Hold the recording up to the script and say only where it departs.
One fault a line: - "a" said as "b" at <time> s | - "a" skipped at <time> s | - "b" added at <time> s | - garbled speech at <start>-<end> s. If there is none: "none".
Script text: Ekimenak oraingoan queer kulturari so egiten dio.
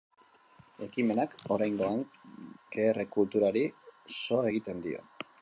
none